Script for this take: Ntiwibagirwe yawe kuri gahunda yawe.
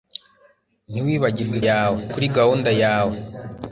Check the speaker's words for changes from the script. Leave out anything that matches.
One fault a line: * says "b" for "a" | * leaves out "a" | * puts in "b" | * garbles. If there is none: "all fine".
all fine